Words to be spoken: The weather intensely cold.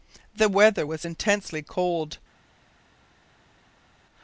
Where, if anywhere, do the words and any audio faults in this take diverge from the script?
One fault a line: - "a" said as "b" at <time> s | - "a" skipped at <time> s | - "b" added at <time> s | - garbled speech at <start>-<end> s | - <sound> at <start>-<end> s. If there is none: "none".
- "was" added at 0.9 s